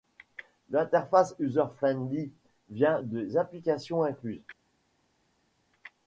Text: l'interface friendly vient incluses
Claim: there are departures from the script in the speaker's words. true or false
true